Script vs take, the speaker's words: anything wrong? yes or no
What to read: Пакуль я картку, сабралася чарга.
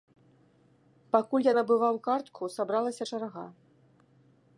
yes